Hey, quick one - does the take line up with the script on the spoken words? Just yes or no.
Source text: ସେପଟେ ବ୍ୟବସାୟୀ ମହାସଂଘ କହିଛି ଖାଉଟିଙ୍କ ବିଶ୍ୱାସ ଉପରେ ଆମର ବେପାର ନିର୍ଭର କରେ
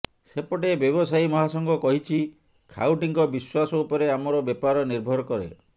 yes